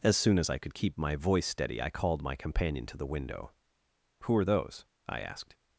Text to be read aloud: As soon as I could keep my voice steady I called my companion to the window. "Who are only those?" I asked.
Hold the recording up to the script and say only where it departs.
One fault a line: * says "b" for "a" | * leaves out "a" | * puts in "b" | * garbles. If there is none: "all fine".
* leaves out "only"